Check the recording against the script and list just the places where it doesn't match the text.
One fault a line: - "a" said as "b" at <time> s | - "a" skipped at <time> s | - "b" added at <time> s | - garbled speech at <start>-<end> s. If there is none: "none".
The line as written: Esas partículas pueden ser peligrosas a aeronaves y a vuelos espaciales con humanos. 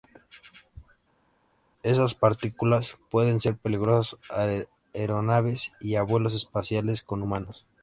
none